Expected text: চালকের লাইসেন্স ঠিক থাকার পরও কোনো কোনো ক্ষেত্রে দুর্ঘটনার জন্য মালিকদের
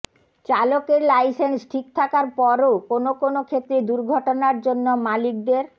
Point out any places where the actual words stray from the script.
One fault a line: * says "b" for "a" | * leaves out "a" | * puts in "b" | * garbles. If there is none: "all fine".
all fine